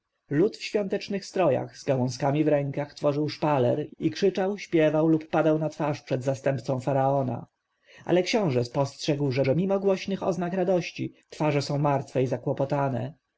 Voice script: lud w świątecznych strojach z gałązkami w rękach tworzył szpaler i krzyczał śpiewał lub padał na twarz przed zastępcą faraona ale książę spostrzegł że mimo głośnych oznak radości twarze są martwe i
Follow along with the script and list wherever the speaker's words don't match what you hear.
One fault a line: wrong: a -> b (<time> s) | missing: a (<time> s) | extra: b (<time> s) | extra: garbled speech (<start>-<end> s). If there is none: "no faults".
extra: że (9.4 s)